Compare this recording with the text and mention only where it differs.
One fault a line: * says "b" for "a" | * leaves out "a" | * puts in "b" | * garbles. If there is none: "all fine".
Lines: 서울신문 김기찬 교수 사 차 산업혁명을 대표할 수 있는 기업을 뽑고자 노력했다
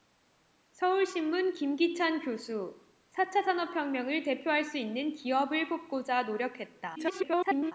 * garbles